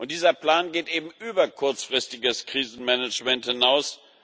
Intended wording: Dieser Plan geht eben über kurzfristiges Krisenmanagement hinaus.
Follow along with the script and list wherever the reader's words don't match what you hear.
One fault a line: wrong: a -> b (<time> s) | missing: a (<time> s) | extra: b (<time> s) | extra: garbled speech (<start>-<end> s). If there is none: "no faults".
no faults